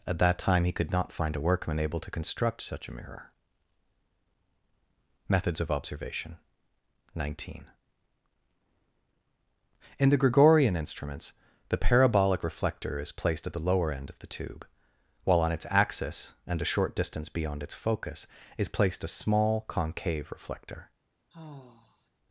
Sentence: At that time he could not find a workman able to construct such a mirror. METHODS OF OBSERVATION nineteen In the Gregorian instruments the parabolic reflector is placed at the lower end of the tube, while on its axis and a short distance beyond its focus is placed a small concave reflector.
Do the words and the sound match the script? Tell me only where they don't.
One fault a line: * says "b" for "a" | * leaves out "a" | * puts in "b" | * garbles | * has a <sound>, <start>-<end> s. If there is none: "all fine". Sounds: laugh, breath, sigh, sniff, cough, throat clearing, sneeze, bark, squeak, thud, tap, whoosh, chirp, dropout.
* has a sigh, 21.3-22.1 s